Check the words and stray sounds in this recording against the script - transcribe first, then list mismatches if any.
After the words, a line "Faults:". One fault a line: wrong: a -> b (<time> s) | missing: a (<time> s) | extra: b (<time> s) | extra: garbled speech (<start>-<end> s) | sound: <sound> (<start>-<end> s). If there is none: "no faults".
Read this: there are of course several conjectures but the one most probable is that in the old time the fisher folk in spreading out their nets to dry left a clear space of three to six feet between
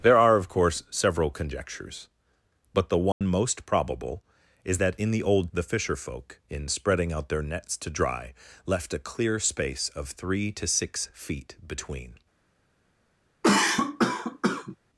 there are of course several conjectures but the one most probable is that in the old the fisher folk in spreading out their nets to dry left a clear space of three to six feet between
Faults:
sound: dropout (3.1-3.2 s)
missing: time (5.5 s)
sound: cough (13.4-14.8 s)